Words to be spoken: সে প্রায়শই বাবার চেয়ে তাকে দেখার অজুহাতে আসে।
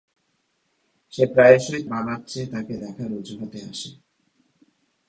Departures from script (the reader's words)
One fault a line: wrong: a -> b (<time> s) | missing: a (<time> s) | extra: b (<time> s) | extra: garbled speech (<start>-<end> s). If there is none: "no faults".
no faults